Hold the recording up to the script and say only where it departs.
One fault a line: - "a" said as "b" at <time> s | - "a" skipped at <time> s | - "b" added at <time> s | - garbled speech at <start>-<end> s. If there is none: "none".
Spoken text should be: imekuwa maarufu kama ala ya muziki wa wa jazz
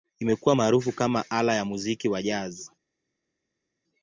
- "wa" skipped at 2.2 s